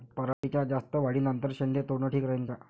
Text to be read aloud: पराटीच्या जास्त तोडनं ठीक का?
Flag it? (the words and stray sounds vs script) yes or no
yes